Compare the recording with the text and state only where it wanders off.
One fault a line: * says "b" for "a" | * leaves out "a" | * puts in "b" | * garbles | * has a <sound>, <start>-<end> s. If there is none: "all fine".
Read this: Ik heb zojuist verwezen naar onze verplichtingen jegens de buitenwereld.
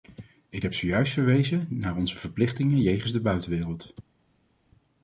all fine